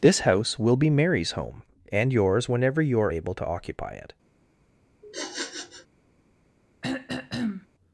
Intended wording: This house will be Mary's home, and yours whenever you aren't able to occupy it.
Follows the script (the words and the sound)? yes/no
no